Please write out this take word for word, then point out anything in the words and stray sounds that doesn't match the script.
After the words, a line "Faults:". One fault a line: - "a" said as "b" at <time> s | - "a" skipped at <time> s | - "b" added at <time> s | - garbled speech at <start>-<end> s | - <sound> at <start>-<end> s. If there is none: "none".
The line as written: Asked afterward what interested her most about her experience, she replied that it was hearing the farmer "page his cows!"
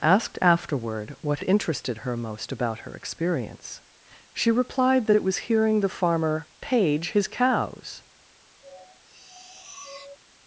Asked afterward what interested her most about her experience, she replied that it was hearing the farmer "page his cows!"
Faults:
- sniff at 8.6-10.2 s